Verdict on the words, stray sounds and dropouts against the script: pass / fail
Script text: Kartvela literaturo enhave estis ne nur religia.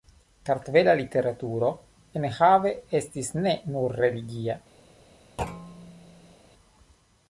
fail